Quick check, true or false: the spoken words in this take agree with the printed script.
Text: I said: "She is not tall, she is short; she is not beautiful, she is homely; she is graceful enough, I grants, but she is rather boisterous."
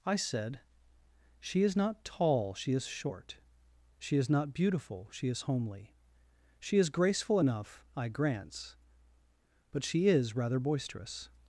true